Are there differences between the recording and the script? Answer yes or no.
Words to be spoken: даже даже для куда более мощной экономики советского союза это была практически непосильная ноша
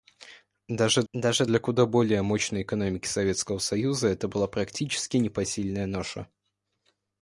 no